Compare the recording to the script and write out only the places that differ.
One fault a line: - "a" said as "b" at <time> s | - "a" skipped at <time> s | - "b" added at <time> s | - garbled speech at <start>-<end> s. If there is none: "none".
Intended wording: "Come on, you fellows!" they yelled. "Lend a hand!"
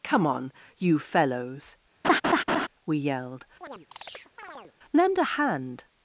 - "they" said as "we" at 2.9 s